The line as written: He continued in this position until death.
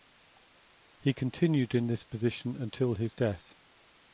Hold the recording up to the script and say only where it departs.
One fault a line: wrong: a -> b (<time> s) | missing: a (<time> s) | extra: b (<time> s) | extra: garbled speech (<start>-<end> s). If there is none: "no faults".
extra: his (2.9 s)